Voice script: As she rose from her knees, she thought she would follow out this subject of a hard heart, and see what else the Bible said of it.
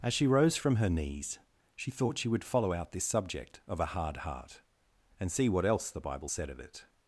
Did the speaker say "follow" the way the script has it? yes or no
yes